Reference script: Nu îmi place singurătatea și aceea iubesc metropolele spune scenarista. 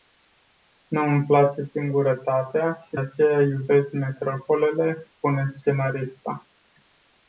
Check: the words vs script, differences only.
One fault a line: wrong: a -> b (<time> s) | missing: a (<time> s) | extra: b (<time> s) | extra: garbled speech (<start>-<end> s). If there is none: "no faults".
no faults